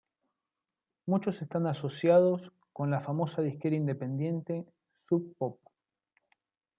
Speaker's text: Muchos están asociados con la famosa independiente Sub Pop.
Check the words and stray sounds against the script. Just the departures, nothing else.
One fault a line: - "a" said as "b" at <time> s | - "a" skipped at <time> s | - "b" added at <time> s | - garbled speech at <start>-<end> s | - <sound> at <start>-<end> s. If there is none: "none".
- "disquera" added at 3.4 s